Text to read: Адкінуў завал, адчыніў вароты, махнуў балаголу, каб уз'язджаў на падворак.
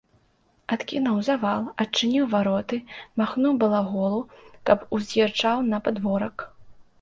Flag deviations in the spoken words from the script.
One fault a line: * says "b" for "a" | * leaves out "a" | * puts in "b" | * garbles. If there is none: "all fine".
all fine